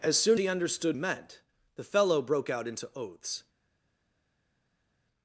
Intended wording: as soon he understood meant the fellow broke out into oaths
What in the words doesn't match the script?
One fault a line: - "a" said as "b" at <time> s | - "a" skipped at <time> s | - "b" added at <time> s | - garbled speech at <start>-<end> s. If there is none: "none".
none